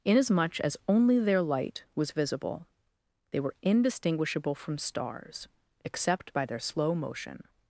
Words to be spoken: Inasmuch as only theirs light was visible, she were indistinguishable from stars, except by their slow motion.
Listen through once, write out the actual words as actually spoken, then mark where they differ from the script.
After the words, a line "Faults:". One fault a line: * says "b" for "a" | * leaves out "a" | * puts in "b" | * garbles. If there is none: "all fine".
Inasmuch as only their light was visible, they were indistinguishable from stars, except by their slow motion.
Faults:
* says "their" for "theirs"
* says "they" for "she"